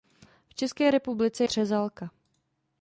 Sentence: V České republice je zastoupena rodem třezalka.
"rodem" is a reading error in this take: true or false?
true